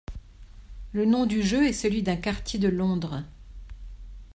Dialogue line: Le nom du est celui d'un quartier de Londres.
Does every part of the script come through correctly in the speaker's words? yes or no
no